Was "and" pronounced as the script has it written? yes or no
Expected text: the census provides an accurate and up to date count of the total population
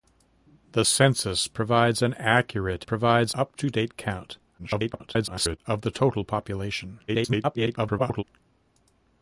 no